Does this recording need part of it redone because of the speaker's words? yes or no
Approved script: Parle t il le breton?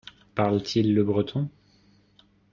no